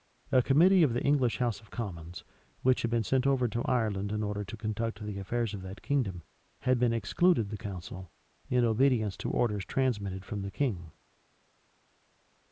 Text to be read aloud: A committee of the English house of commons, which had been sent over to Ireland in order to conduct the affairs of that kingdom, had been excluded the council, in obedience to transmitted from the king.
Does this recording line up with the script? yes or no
no